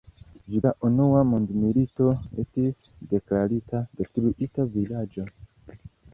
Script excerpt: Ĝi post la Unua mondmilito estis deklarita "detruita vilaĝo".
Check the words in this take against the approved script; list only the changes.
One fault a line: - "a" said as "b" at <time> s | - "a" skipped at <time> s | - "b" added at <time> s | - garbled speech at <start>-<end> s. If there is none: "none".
- "post" skipped at 0.6 s